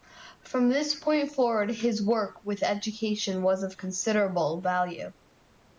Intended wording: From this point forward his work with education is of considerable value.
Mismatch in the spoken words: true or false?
true